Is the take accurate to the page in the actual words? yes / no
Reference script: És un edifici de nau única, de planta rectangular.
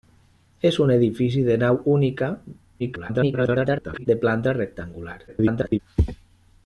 no